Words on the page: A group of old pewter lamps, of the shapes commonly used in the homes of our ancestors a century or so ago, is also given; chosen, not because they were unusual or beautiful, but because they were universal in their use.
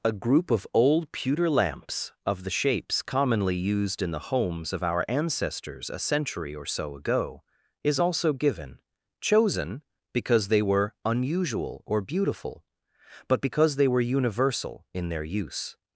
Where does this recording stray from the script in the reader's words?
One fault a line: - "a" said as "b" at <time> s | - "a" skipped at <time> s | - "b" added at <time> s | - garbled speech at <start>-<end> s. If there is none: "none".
- "not" skipped at 9.8 s